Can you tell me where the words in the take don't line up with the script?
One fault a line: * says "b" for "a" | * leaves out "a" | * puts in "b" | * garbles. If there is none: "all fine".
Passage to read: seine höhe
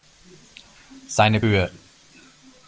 all fine